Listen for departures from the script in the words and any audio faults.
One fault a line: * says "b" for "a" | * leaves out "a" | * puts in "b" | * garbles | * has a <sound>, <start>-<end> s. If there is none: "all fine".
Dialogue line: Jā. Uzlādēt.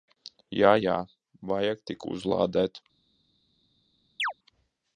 * puts in "Jā Vajag tik"
* has a chirp, 4.2-4.3 s